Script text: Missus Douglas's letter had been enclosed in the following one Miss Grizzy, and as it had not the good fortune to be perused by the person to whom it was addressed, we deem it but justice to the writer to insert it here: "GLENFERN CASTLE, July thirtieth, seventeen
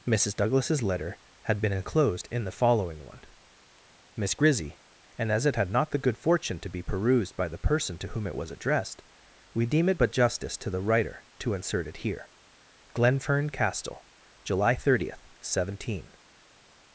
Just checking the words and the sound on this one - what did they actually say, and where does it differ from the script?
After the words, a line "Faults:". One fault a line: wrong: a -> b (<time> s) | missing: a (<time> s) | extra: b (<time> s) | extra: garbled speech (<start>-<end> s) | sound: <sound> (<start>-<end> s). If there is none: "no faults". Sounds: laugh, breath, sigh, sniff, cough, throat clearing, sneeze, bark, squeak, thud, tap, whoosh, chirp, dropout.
Missus Douglas's letter had been enclosed in the following one Miss Grizzy, and as it had not the good fortune to be perused by the person to whom it was addressed, we deem it but justice to the writer to insert it here: "GLENFERN CASTLE, July thirtieth, seventeen
Faults:
no faults